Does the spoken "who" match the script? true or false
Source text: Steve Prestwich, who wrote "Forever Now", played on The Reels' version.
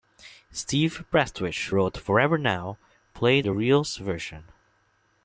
false